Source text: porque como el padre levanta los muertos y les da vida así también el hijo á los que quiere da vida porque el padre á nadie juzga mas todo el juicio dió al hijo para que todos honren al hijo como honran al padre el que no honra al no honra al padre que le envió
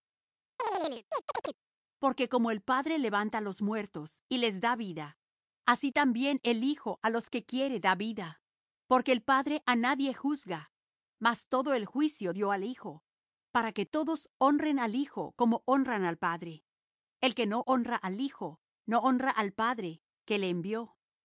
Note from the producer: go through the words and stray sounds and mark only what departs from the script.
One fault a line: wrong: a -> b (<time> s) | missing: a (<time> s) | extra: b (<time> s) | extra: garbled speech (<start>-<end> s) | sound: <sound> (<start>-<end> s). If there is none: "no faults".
sound: chirp (0.6-1.6 s)
extra: hijo (18.2 s)